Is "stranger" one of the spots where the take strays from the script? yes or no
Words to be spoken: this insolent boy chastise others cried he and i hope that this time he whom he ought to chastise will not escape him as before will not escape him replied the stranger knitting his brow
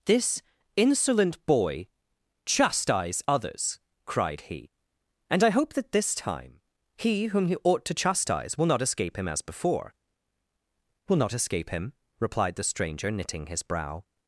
no